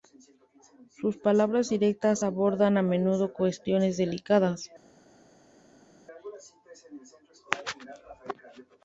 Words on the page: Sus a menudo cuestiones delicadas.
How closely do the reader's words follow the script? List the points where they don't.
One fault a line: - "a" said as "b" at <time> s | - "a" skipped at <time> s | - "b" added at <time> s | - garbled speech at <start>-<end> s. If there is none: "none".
- "palabras directas abordan" added at 1.2 s